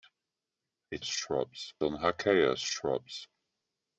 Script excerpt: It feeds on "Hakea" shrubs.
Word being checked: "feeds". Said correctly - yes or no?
no